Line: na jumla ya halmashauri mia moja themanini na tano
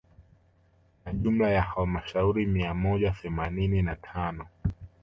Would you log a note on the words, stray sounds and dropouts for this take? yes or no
no